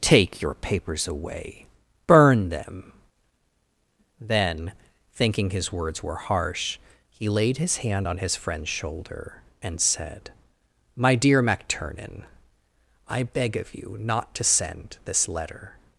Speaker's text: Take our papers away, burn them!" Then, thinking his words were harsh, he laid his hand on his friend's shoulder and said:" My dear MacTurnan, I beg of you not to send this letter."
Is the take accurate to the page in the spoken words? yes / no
no